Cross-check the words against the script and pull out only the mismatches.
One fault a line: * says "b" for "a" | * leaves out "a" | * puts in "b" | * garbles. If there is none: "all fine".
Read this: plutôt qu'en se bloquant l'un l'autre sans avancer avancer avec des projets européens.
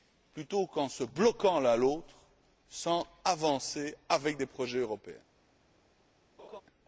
* leaves out "avancer"